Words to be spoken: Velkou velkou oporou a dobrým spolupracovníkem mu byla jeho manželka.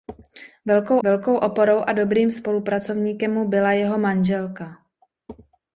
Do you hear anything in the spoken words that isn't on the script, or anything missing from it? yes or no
no